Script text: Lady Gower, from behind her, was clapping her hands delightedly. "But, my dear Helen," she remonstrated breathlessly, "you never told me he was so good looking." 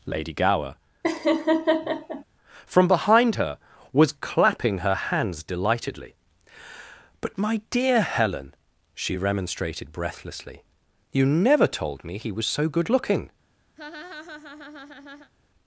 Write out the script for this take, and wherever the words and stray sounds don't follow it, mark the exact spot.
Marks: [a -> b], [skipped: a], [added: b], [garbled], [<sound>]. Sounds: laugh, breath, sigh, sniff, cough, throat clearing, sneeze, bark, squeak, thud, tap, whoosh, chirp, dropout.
Lady Gower, [laugh] from behind her, was clapping her hands delightedly. "But, my dear Helen," she remonstrated breathlessly, "you never told me he was so good looking." [laugh]